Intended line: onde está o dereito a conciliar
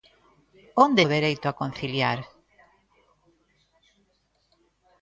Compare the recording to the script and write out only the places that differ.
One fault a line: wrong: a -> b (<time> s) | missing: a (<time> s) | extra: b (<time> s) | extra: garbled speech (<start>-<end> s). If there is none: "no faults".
missing: está (1.0 s)